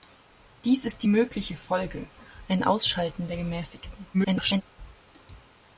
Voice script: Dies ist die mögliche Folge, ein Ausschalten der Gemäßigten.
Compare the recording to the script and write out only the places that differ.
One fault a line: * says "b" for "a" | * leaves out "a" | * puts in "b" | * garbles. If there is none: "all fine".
* garbles